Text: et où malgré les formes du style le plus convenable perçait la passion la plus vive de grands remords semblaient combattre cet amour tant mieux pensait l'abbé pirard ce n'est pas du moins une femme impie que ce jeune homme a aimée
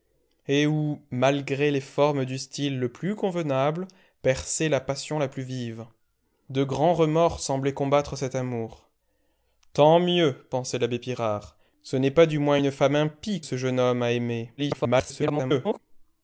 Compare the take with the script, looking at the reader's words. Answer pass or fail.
fail